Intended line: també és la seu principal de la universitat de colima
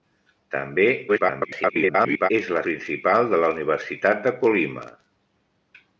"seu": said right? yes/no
no